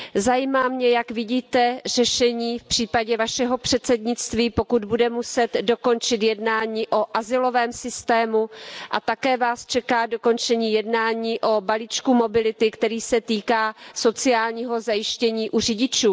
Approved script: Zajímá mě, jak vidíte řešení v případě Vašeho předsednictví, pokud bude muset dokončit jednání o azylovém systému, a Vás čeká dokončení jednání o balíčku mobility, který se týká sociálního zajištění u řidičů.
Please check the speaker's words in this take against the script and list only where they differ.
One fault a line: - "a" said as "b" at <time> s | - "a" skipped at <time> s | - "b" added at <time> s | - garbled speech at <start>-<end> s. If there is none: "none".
- "také" added at 9.0 s